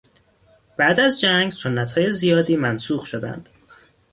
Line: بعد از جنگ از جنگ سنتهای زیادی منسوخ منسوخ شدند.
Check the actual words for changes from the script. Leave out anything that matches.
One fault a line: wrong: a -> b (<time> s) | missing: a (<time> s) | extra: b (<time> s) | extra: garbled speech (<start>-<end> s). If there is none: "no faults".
missing: از جنگ (1.5 s)
missing: منسوخ (3.1 s)